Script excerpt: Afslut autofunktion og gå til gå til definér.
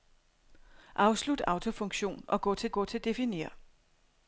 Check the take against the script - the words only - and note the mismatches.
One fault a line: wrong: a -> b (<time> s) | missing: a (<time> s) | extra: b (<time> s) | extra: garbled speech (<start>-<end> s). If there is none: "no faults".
no faults